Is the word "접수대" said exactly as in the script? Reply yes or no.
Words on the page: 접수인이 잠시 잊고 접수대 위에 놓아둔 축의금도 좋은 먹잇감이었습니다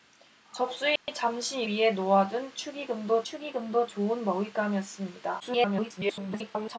no